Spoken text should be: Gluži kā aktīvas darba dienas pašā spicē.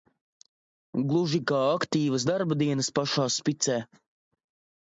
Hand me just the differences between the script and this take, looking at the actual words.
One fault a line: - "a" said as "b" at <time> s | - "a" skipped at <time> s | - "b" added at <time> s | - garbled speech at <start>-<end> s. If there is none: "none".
none